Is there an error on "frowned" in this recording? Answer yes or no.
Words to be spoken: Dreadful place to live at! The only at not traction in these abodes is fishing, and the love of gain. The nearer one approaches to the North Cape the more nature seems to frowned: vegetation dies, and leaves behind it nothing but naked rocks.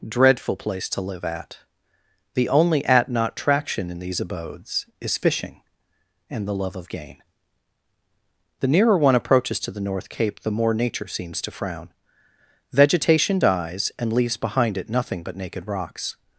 yes